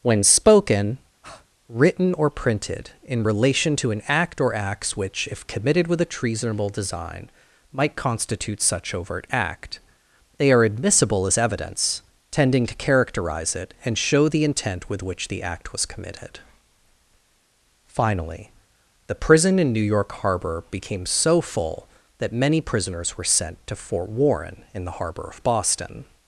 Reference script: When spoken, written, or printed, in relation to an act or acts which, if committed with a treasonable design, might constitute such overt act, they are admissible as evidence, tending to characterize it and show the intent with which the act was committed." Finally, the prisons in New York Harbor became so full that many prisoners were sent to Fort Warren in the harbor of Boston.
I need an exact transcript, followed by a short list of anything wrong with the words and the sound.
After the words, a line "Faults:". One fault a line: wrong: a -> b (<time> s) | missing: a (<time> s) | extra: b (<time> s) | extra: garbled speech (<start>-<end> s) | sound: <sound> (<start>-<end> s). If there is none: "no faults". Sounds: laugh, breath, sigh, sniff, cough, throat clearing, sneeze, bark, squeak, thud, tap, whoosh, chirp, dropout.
When spoken, written, or printed, in relation to an act or acts which, if committed with a treasonable design, might constitute such overt act, they are admissible as evidence, tending to characterize it and show the intent with which the act was committed." Finally, the prison in New York Harbor became so full that many prisoners were sent to Fort Warren in the harbor of Boston.
Faults:
sound: breath (1.2-1.5 s)
wrong: prisons -> prison (19.2 s)